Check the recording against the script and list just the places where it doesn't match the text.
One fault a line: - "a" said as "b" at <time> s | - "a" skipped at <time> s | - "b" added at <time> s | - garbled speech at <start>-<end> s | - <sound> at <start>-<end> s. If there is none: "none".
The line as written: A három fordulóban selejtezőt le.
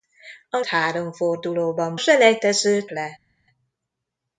none